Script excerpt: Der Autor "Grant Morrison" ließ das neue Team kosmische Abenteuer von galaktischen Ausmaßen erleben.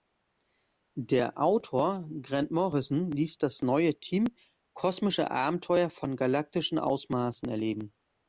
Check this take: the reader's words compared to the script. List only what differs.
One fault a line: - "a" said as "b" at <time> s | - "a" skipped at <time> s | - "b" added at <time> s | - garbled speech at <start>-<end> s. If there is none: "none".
none